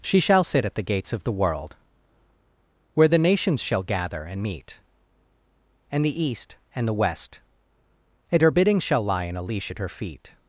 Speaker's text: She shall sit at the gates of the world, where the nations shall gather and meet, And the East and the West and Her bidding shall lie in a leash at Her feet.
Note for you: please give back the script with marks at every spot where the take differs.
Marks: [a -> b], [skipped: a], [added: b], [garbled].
She shall sit at the gates of the world, where the nations shall gather and meet, And the East and the West and Her bidding shall lie in a leash at Her feet.